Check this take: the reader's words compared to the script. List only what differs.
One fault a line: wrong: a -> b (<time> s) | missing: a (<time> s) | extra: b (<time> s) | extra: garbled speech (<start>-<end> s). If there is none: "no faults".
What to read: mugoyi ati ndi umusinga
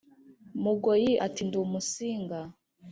no faults